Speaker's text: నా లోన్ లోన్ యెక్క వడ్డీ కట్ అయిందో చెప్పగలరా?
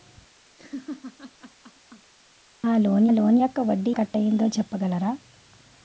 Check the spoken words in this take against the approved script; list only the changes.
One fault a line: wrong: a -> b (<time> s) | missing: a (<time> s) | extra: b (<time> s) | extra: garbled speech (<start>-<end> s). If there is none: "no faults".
no faults